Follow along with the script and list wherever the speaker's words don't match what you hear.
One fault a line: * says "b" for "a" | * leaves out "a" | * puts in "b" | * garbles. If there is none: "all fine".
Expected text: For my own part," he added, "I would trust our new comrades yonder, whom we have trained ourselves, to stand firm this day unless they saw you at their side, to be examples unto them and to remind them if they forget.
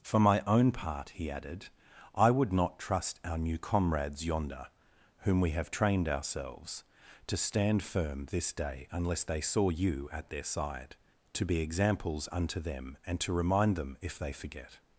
* puts in "not"